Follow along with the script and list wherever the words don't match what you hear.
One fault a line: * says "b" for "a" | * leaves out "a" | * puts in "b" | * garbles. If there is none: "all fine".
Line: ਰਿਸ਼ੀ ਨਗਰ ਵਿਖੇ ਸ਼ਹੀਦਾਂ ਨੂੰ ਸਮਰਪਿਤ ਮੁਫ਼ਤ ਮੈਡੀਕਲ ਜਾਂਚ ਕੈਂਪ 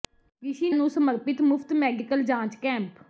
* leaves out "ਨਗਰ ਵਿਖੇ ਸ਼ਹੀਦਾਂ"